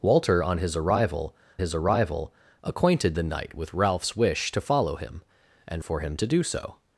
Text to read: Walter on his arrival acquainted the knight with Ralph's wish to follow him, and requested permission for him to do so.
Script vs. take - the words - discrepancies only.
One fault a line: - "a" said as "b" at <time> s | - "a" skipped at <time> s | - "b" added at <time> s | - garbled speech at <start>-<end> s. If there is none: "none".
- "his arrival" added at 1.6 s
- "requested permission" skipped at 5.8 s